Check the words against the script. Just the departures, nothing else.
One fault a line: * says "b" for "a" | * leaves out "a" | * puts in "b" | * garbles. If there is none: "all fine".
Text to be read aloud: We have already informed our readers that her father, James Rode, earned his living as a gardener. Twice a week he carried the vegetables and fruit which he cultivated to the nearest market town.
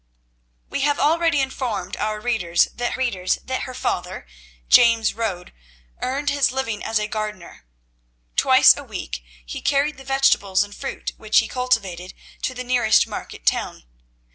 * puts in "readers that"